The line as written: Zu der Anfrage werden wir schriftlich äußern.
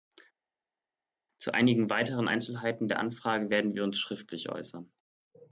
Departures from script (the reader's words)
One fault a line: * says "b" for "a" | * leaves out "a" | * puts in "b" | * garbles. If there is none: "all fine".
* puts in "einigen weiteren Einzelheiten"
* puts in "uns"